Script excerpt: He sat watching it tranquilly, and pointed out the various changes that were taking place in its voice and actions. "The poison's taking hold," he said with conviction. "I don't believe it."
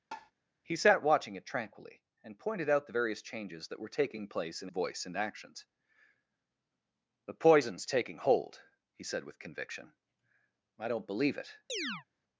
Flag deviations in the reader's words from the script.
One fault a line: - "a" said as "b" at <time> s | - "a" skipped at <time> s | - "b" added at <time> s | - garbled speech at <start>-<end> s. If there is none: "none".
- "its" skipped at 4.7 s